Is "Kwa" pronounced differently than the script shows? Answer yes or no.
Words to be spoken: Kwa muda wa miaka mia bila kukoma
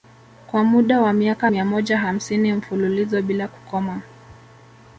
no